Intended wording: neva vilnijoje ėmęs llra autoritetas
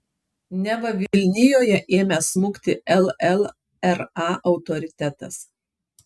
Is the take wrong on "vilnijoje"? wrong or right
right